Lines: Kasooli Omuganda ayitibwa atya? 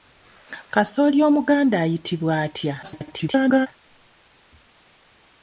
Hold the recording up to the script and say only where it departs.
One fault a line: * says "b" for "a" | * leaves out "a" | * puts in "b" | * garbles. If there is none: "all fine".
* garbles